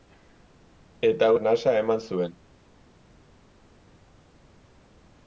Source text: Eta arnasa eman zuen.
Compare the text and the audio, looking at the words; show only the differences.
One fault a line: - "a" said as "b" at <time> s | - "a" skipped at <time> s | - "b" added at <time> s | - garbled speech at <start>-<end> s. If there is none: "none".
none